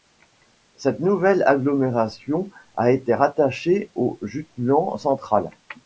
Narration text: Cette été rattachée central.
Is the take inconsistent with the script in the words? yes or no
yes